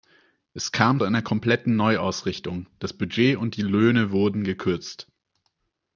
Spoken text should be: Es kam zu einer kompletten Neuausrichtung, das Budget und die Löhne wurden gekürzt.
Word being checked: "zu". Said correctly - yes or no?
no